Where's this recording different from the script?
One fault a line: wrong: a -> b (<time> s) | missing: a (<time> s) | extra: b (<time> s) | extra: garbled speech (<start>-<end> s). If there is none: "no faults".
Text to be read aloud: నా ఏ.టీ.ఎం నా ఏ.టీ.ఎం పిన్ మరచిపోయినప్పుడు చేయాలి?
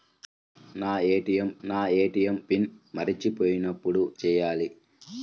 no faults